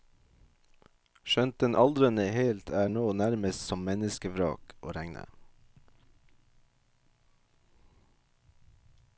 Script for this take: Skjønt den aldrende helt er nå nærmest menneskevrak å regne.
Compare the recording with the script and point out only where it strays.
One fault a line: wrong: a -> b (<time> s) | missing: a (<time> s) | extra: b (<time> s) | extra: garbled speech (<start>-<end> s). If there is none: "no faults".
extra: som (3.7 s)